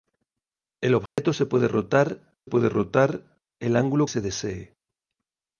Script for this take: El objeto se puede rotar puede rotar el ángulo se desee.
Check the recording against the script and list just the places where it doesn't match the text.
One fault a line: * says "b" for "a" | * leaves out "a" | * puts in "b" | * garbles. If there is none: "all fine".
all fine